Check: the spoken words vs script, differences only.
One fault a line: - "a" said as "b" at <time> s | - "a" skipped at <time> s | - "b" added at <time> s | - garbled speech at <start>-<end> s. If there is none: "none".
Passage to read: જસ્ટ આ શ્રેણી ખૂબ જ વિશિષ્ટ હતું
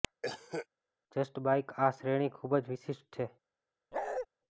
- "બાઇક" added at 1.4 s
- "હતું" said as "છે" at 3.1 s